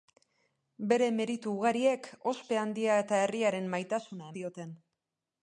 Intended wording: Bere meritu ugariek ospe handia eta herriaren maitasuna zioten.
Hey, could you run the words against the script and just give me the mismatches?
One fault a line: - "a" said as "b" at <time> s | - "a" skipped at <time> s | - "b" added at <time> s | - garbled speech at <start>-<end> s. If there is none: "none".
none